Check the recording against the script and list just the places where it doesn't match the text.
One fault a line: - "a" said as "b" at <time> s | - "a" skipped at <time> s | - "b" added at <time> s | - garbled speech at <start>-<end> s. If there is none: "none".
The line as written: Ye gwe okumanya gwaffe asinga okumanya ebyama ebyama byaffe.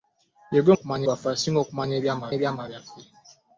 none